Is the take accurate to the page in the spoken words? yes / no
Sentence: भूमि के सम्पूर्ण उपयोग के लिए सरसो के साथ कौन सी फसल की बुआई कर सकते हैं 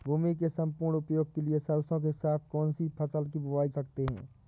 no